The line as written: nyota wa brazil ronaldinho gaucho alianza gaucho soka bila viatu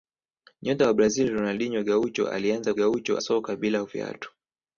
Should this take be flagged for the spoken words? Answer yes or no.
no